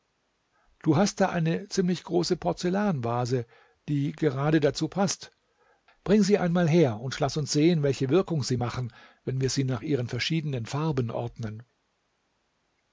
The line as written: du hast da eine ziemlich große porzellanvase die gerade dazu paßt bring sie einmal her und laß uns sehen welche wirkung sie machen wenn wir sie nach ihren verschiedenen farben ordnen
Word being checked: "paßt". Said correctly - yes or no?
yes